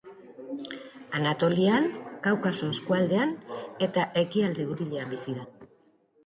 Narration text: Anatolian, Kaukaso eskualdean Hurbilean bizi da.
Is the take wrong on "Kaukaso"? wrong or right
right